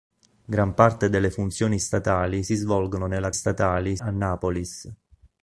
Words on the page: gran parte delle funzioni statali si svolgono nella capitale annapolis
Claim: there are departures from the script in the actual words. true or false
true